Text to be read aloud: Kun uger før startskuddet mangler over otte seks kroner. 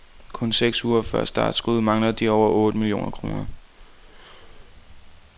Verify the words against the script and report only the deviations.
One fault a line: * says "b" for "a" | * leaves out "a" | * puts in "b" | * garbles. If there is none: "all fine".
* puts in "seks"
* puts in "de"
* says "millioner" for "seks"